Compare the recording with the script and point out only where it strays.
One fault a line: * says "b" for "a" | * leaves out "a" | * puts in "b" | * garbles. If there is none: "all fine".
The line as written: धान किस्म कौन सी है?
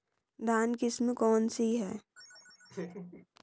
all fine